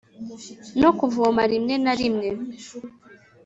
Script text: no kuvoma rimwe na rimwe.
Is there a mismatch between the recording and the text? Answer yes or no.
no